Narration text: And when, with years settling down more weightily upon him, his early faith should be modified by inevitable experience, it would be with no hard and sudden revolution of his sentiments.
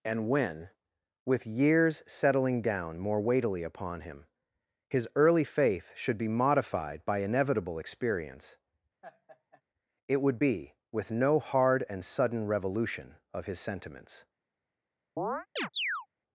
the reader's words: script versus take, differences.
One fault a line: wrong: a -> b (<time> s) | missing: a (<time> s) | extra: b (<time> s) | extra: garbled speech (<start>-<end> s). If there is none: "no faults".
no faults